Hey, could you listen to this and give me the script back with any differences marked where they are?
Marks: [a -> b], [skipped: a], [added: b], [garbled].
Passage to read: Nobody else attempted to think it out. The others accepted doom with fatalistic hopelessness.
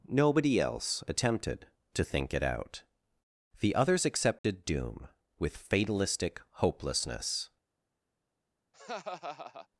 Nobody else attempted to think it out. The others accepted doom with fatalistic hopelessness.